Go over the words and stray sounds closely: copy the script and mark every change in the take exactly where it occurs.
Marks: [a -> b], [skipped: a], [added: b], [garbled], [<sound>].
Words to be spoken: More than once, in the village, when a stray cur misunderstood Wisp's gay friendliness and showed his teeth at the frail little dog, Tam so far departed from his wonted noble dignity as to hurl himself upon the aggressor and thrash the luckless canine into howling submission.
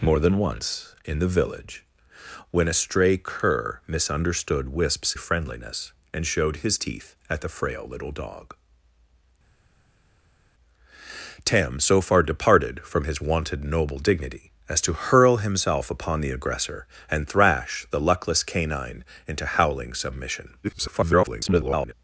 More than once, in the village, when a stray cur misunderstood Wisp's [skipped: gay] friendliness and showed his teeth at the frail little dog, Tam so far departed from his wonted noble dignity as to hurl himself upon the aggressor and thrash the luckless canine into howling submission. [garbled]